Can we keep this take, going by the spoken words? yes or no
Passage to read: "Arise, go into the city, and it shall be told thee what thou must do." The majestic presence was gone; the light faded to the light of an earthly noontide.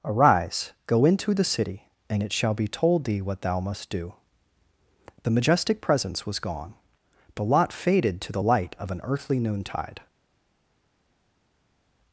no